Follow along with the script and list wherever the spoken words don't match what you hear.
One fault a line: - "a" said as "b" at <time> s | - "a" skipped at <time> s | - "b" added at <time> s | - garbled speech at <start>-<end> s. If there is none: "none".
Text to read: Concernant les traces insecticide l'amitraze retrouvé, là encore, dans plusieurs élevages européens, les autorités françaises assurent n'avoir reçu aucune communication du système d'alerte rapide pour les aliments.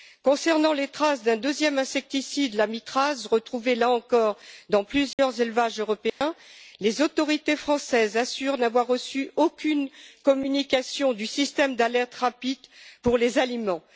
- "d'un deuxième" added at 1.2 s